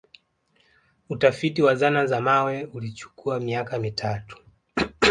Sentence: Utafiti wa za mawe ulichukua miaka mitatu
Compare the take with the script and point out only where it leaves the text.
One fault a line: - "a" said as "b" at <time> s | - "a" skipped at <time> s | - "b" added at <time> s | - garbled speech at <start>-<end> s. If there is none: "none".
- "zana" added at 1.8 s